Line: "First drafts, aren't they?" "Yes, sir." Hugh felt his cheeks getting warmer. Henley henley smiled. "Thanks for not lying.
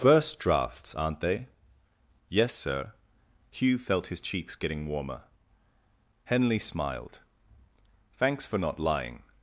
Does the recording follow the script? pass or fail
fail